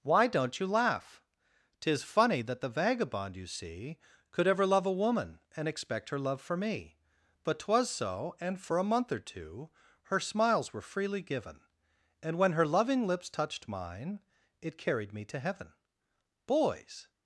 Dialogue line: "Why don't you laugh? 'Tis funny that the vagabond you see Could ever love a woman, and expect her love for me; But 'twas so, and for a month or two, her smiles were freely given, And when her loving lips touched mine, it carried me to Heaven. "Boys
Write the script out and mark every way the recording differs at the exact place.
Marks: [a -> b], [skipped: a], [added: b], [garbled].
"Why don't you laugh? 'Tis funny that the vagabond you see Could ever love a woman, and expect her love for me; But 'twas so, and for a month or two, her smiles were freely given, And when her loving lips touched mine, it carried me to Heaven. "Boys